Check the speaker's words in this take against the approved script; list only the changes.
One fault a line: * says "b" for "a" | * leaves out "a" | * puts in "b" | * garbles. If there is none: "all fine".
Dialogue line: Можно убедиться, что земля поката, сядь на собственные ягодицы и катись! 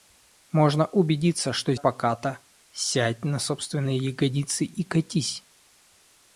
* leaves out "земля"